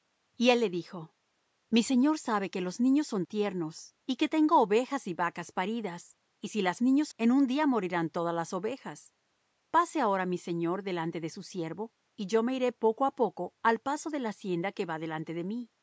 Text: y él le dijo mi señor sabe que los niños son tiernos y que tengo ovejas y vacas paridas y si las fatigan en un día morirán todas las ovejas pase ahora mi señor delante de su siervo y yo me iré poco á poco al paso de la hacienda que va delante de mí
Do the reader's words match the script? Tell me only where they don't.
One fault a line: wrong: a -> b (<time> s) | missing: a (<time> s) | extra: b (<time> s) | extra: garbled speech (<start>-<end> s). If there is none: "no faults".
wrong: fatigan -> niños (6.8 s)